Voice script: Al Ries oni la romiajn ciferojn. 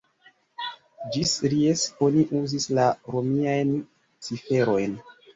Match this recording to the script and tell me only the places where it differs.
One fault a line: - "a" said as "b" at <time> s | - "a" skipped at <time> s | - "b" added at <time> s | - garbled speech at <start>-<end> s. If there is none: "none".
- "Al" said as "Ĝis" at 1.1 s
- "uzis" added at 2.4 s